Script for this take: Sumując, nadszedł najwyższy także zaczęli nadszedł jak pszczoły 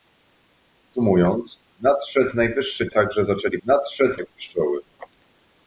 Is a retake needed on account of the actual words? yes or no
no